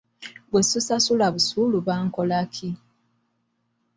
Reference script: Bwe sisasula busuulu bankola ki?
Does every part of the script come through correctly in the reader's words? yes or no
yes